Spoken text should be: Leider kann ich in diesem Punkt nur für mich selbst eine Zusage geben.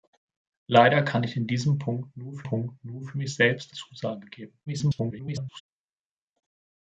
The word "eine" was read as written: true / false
false